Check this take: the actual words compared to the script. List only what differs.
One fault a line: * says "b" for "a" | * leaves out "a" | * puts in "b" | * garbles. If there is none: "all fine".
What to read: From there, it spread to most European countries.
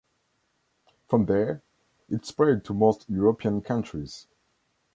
all fine